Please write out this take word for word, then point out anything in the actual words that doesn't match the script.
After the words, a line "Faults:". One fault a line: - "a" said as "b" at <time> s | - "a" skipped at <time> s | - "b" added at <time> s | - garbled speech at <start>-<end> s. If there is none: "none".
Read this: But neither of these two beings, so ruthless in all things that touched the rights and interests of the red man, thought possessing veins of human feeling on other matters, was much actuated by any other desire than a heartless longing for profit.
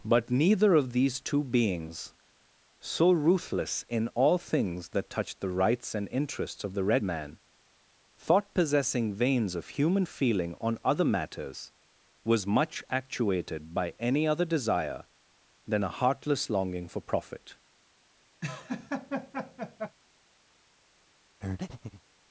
But neither of these two beings, so ruthless in all things that touched the rights and interests of the red man, thought possessing veins of human feeling on other matters, was much actuated by any other desire than a heartless longing for profit.
Faults:
none